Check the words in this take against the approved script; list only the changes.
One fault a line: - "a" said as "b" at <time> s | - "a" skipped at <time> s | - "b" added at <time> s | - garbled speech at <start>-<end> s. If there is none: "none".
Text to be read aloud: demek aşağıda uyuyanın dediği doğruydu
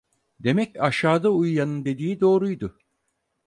none